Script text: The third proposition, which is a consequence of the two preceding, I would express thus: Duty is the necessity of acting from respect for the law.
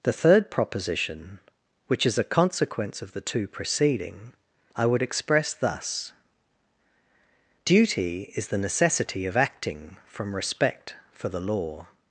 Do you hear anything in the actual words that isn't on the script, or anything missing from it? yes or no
no